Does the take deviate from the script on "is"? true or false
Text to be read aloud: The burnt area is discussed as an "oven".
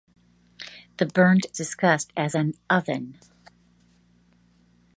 true